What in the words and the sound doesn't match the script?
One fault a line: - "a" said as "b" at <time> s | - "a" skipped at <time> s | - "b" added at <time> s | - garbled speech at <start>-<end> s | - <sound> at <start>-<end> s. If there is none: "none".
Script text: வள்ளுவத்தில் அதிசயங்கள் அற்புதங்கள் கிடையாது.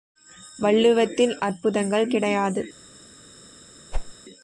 - "அதிசயங்கள்" skipped at 1.4 s
- whoosh at 3.9-4.1 s